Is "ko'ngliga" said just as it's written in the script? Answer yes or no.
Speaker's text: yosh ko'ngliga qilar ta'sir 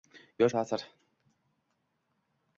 no